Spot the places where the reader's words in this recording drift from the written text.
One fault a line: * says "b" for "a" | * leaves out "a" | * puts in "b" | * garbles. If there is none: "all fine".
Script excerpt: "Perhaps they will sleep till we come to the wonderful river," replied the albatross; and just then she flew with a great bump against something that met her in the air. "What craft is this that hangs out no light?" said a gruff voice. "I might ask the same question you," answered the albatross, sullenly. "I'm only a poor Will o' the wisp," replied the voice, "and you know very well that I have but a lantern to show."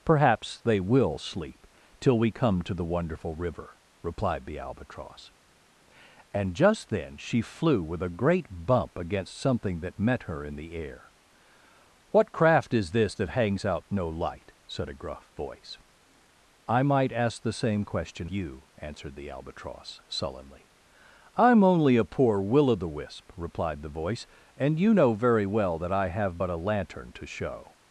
all fine